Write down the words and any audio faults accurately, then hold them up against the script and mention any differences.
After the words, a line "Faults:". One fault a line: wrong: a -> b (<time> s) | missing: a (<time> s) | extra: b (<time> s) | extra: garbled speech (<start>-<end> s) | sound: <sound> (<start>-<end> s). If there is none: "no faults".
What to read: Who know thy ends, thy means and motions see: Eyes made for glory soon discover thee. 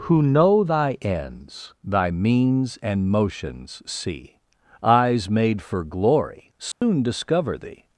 Who know thy ends, thy means and motions see: Eyes made for glory soon discover thee.
Faults:
sound: dropout (6.7-6.8 s)